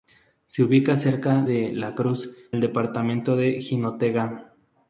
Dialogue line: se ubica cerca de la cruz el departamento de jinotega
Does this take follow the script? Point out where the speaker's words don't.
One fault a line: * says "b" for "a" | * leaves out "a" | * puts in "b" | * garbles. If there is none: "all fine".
all fine